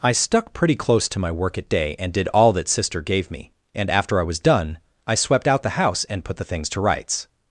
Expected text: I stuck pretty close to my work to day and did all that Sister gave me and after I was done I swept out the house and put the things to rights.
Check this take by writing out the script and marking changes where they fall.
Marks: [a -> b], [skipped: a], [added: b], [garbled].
I stuck pretty close to my work [to -> at] day and did all that Sister gave me and after I was done I swept out the house and put the things to rights.